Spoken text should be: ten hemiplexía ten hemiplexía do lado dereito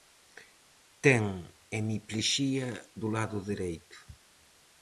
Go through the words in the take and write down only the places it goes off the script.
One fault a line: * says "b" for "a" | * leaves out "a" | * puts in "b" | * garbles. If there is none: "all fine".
* leaves out "ten hemiplexía"